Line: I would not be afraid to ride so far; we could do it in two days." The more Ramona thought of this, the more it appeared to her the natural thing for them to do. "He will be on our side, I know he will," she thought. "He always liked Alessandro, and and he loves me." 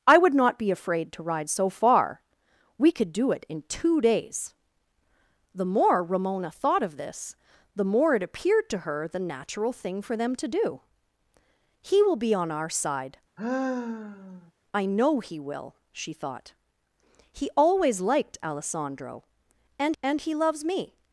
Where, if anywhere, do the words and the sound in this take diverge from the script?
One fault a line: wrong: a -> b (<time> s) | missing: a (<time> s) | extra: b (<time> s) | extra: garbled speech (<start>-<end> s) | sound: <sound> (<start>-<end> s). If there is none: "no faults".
sound: sigh (13.4-14.5 s)